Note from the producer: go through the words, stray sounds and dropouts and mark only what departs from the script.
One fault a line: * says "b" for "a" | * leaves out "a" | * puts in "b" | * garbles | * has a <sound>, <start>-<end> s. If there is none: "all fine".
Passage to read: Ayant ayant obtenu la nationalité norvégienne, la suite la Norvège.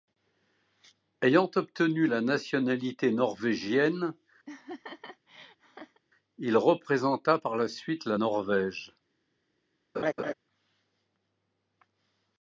* leaves out "ayant"
* has a laugh, 4.5-6.0 s
* puts in "il représenta par"
* has a laugh, 9.9-10.3 s